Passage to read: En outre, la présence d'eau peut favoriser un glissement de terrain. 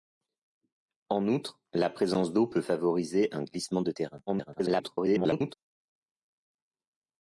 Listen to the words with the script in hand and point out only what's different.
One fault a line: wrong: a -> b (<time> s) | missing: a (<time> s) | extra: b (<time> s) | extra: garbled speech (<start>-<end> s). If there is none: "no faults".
extra: garbled speech (4.3-5.5 s)